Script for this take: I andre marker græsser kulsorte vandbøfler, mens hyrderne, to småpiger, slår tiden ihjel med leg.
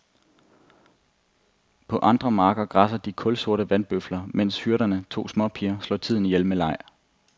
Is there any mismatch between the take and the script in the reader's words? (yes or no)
yes